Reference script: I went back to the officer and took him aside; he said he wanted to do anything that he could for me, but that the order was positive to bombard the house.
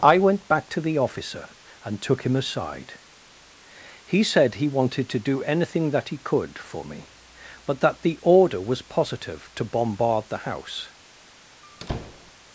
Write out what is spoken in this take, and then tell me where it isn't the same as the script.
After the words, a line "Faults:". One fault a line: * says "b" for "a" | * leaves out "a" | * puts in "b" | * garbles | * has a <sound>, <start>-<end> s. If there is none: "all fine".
I went back to the officer and took him aside; he said he wanted to do anything that he could for me, but that the order was positive to bombard the house.
Faults:
* has a squeak, 11.6-12.3 s